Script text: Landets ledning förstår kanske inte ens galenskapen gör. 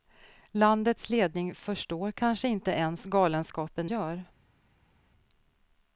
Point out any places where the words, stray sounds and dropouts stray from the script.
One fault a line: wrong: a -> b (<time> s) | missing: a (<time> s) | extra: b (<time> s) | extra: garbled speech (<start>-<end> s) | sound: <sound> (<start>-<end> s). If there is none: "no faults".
no faults